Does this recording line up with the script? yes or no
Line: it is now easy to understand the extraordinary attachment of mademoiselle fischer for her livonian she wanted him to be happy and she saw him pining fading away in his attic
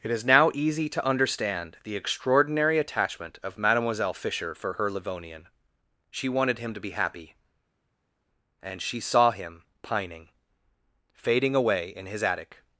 yes